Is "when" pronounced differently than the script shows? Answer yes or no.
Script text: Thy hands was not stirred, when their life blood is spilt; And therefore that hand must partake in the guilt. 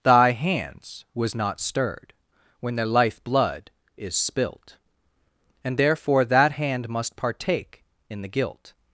no